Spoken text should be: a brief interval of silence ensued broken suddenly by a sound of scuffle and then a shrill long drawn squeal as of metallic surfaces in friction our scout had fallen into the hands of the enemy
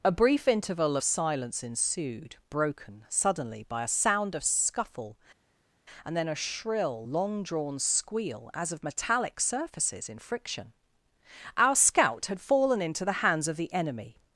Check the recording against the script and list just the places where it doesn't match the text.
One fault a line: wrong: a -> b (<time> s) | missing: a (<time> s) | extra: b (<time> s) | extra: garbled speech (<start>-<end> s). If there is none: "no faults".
missing: of (1.0 s)